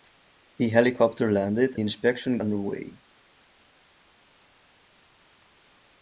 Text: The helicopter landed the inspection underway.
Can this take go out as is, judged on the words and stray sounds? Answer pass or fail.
pass